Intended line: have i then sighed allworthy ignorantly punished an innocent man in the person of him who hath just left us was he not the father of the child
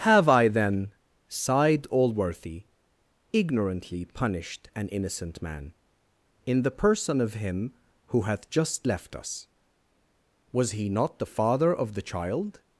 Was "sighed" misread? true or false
false